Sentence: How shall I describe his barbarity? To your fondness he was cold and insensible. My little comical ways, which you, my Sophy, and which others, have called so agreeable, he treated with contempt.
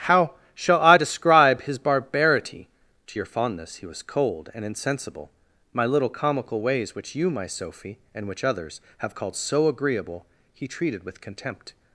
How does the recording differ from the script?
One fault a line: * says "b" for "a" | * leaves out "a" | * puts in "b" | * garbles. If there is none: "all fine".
all fine